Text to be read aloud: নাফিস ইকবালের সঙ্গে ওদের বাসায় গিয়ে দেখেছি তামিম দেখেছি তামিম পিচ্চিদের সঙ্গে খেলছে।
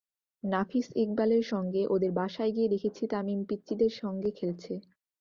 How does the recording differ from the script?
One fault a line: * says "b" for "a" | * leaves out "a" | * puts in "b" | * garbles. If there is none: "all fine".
* leaves out "দেখেছি তামিম"